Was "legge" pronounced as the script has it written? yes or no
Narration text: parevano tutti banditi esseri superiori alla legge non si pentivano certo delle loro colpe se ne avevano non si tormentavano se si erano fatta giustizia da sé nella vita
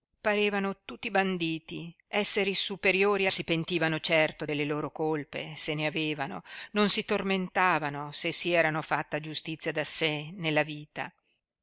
no